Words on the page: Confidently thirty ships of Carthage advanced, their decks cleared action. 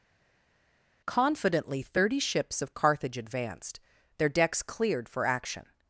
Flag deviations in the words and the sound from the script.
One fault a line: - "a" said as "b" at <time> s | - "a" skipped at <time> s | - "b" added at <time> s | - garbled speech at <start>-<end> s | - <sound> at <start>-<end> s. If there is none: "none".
- "for" added at 5.1 s